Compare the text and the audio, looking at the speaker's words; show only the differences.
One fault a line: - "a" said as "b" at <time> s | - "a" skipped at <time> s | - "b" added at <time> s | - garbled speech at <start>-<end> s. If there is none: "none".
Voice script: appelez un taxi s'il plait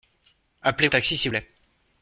none